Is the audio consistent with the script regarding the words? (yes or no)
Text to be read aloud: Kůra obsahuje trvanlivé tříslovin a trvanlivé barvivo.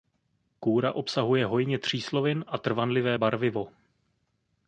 no